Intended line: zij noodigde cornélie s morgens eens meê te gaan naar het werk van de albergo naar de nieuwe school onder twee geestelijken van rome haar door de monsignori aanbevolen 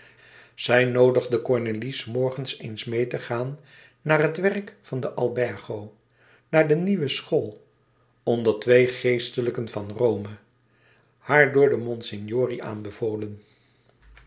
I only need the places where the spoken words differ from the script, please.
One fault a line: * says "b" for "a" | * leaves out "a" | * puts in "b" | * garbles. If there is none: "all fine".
all fine